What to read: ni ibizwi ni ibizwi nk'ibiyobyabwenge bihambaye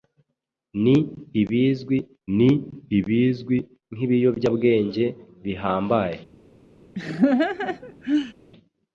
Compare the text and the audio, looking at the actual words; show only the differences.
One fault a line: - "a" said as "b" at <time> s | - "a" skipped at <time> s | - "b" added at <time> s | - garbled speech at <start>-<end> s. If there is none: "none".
none